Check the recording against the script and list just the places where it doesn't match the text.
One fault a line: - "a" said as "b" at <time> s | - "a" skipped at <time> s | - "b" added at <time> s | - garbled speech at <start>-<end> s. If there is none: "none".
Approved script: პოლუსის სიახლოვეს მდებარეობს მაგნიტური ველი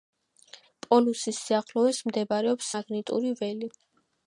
none